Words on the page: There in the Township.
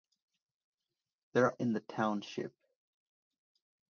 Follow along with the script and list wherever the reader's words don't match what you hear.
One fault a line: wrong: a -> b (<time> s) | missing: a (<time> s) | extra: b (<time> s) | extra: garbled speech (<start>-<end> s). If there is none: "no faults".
no faults